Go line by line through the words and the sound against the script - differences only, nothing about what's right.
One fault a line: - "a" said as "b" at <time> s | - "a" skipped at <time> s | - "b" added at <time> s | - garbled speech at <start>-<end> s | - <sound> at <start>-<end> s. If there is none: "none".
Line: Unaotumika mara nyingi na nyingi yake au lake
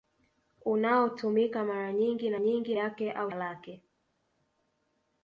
none